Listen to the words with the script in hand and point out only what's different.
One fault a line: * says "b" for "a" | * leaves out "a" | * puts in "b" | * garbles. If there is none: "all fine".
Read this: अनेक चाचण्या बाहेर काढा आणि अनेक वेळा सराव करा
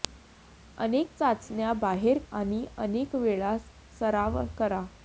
* leaves out "काढा"